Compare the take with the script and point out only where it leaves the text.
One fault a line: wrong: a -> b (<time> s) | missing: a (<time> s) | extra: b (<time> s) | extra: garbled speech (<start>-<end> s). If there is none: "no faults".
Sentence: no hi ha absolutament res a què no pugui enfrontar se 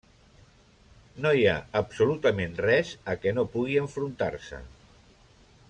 no faults